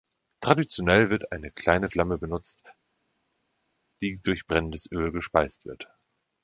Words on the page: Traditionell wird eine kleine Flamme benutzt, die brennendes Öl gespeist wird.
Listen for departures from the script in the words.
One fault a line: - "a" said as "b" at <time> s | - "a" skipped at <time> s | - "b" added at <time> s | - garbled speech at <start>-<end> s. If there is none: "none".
- "durch" added at 4.2 s